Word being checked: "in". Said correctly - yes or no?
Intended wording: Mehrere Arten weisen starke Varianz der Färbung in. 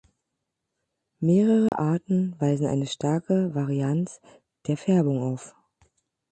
no